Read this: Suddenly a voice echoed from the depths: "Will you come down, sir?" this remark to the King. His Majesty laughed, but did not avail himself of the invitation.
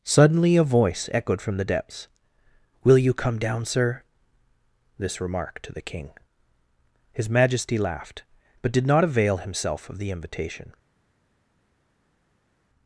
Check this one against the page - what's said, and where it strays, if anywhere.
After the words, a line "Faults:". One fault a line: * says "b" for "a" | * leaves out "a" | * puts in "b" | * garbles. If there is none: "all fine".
Suddenly a voice echoed from the depths: "Will you come down, sir?" this remark to the King. His Majesty laughed, but did not avail himself of the invitation.
Faults:
all fine